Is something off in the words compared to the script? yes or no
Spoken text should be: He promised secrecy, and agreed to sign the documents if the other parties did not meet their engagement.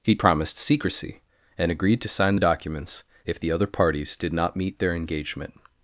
no